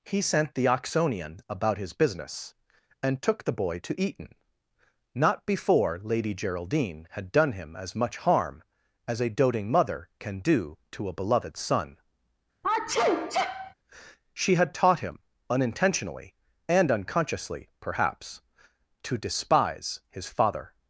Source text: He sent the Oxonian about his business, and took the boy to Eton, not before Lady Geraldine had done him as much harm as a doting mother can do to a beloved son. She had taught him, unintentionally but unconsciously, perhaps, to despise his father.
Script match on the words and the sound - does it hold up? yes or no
no